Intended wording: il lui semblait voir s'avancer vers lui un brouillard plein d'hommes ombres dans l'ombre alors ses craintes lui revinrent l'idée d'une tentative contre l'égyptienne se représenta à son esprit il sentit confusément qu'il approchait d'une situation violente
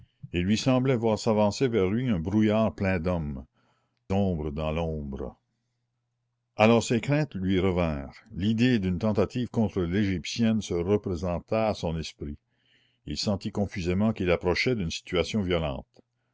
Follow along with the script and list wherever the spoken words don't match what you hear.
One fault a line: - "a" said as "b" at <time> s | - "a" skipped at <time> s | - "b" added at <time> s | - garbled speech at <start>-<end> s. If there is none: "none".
none